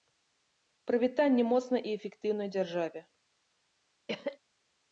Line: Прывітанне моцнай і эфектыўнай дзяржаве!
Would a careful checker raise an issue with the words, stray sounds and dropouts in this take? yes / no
yes